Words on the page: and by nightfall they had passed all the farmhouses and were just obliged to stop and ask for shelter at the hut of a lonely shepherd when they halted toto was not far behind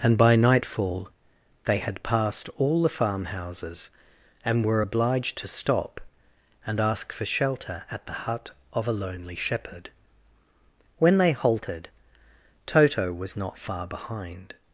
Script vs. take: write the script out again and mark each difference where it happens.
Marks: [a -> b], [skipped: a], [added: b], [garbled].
and by nightfall they had passed all the farmhouses and were [skipped: just] obliged to stop and ask for shelter at the hut of a lonely shepherd when they halted toto was not far behind